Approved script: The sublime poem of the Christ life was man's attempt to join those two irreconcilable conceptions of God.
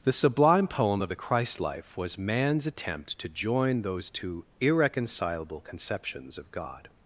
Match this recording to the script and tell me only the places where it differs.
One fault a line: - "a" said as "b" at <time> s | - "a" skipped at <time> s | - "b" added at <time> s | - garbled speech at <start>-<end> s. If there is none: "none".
none